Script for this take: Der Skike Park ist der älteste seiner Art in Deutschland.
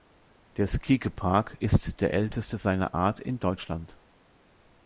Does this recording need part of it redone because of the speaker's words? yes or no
no